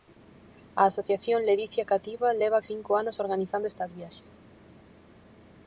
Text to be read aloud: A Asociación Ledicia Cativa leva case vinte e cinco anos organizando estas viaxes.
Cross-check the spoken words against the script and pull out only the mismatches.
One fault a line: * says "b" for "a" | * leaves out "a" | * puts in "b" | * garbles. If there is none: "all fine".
* leaves out "case vinte"